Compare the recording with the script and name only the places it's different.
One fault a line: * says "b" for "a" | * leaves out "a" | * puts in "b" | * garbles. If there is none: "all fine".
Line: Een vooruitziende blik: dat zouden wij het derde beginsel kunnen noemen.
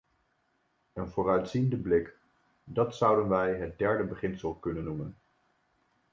all fine